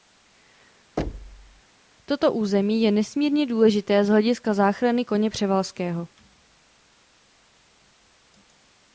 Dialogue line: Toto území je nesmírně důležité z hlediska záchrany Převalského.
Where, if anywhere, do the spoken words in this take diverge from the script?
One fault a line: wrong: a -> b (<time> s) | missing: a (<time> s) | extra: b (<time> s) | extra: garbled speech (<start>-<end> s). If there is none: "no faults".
extra: koně (5.1 s)